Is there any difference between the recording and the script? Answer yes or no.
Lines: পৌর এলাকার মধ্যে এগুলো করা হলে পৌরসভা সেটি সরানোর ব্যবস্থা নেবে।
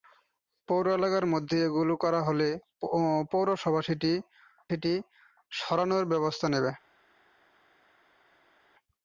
yes